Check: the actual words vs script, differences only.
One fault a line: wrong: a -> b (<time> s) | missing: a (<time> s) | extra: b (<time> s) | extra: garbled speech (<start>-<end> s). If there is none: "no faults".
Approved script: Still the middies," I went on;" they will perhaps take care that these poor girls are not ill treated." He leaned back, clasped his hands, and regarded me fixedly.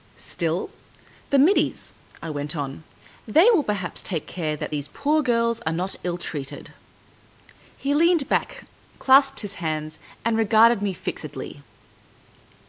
no faults